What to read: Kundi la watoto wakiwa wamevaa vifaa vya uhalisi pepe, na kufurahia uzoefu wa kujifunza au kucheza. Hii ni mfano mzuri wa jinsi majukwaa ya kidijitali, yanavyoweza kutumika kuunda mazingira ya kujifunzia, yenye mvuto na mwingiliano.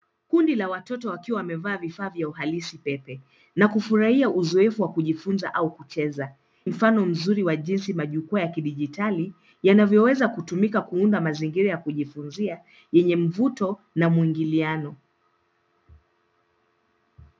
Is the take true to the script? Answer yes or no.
no